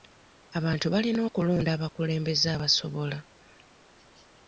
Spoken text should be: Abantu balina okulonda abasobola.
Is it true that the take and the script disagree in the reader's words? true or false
true